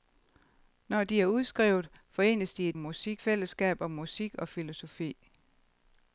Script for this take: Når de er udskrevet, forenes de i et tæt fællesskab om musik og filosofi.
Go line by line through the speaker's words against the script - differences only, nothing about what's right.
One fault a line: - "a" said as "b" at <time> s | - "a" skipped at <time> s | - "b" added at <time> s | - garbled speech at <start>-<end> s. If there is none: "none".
- "tæt" said as "musik" at 2.8 s